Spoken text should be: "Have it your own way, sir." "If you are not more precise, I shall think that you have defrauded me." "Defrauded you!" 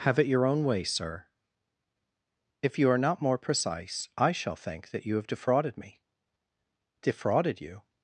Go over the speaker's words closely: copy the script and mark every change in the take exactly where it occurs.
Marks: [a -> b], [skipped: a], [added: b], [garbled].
"Have it your own way, sir." "If you are not more precise, I shall think that you have defrauded me." "Defrauded you!"